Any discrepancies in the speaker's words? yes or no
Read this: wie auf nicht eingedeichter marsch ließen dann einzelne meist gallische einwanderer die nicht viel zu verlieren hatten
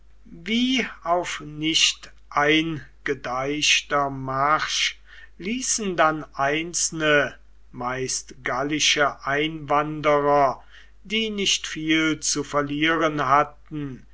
no